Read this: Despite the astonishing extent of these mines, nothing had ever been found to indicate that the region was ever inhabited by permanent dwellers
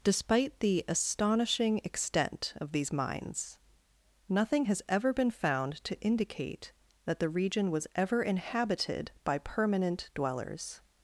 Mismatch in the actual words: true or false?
true